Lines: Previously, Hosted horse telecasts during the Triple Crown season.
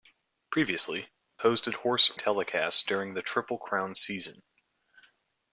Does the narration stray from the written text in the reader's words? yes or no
no